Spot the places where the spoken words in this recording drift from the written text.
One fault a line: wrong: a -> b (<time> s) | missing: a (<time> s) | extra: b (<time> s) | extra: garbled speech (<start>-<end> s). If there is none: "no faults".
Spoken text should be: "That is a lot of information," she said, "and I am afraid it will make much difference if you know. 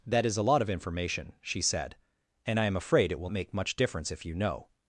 no faults